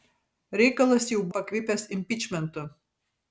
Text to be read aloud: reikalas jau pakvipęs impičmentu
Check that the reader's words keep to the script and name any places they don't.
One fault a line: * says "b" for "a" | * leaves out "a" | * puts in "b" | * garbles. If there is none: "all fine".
all fine